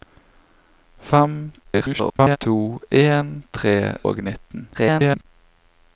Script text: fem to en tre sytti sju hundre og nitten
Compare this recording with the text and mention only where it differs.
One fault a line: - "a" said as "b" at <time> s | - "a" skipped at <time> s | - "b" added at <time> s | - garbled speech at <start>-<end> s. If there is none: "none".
- garbled speech at 1.6-2.4 s
- "sytti sju hundre" skipped at 3.7 s
- garbled speech at 4.7-5.3 s